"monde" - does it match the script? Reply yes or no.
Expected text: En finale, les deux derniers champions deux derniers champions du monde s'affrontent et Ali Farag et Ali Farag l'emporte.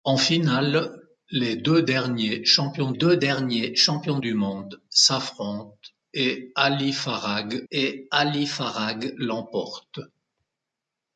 yes